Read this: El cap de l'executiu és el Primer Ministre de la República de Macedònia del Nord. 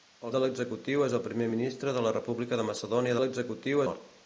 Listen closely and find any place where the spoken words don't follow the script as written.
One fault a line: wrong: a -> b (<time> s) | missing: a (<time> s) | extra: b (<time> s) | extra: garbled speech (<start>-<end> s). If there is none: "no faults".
missing: cap (0.3 s)
wrong: del -> l'executiu (3.2 s)